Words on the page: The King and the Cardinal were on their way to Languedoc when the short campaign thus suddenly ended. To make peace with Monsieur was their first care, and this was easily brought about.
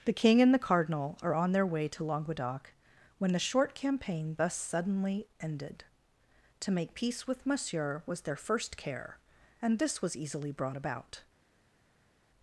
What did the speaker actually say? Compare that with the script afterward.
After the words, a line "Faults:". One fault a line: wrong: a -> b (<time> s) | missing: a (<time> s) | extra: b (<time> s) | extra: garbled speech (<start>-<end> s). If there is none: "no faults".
The King and the Cardinal are on their way to Languedoc when the short campaign thus suddenly ended. To make peace with Monsieur was their first care, and this was easily brought about.
Faults:
wrong: were -> are (1.2 s)